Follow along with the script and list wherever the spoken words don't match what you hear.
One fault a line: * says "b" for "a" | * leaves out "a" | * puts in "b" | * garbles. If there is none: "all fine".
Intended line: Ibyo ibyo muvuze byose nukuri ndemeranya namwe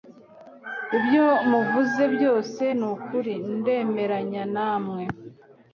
* leaves out "ibyo"